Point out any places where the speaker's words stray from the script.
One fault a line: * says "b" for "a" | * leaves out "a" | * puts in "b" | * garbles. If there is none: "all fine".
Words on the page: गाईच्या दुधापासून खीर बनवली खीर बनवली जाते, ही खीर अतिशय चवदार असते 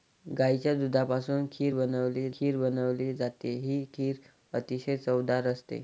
all fine